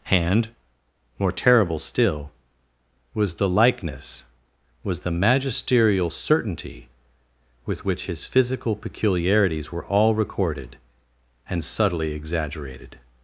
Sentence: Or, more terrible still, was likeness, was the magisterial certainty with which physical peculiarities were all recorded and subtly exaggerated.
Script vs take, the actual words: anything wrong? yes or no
yes